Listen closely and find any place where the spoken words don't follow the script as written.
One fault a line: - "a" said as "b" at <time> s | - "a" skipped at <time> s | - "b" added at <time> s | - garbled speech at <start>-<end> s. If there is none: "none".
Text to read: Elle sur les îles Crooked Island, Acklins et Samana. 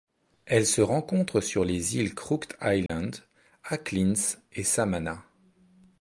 - "se rencontre" added at 0.7 s